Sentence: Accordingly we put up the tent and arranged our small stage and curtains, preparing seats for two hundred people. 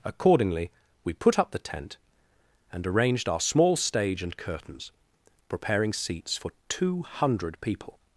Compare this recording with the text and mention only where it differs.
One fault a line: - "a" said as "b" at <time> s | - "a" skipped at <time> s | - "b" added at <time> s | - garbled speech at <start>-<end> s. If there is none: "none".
none